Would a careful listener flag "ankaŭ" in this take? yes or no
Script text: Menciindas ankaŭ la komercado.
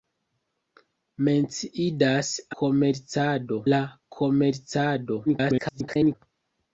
yes